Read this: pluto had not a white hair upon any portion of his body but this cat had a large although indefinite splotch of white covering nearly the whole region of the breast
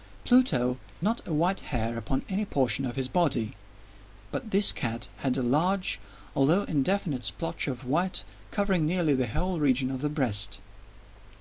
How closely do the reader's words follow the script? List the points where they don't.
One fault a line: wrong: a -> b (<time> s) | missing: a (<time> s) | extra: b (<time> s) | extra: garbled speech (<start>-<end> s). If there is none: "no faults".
missing: had (0.8 s)